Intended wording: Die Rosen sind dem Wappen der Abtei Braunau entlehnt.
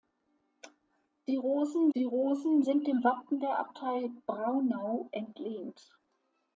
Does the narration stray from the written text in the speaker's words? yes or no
yes